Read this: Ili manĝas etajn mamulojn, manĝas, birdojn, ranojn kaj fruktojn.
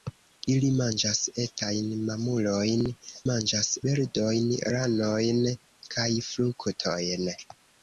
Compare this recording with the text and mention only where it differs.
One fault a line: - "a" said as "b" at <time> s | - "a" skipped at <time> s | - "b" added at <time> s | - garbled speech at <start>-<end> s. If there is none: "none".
none